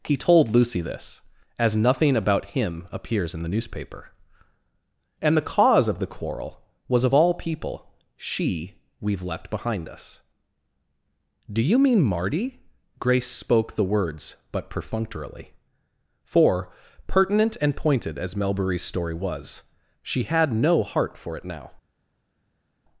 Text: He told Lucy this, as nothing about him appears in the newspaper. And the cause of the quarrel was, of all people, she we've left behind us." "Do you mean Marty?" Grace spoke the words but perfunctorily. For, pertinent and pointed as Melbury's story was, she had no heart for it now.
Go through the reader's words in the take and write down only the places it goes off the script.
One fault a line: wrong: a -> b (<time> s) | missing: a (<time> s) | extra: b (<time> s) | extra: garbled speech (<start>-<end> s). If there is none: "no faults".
no faults